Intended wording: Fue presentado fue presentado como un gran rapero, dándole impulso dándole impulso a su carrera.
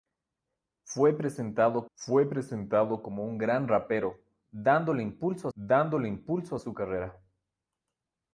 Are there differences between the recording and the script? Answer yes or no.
no